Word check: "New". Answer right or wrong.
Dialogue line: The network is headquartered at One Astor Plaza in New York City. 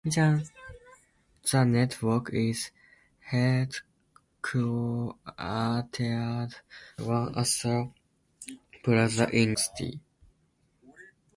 wrong